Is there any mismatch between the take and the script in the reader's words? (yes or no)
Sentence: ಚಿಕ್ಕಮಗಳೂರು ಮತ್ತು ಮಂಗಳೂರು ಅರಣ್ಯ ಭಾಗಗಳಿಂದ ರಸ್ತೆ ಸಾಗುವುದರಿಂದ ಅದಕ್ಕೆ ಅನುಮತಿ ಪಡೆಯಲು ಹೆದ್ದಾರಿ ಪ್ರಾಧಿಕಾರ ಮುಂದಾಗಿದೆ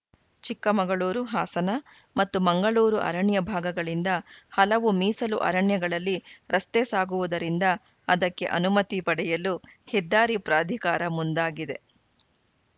yes